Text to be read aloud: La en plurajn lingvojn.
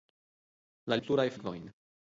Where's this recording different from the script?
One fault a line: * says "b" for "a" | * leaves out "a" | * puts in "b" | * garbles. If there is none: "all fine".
all fine